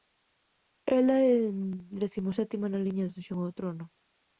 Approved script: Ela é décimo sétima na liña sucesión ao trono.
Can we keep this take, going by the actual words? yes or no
yes